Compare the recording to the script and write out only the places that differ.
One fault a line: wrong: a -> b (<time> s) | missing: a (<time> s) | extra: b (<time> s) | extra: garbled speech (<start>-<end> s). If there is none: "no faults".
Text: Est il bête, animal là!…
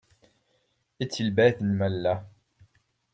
no faults